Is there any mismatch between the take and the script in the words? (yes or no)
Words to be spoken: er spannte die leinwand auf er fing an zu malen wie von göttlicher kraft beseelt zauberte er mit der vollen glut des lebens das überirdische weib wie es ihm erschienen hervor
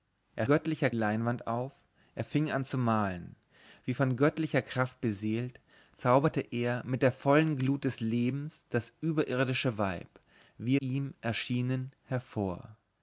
yes